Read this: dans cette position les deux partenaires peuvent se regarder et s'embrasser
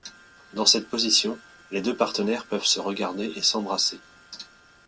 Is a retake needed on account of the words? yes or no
no